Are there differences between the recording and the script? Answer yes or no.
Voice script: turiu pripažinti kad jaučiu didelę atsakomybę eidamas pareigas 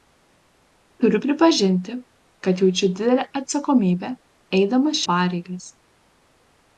no